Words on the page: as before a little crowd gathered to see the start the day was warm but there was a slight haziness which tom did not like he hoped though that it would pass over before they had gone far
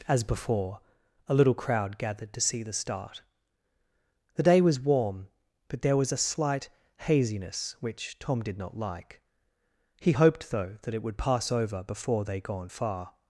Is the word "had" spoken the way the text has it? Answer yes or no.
no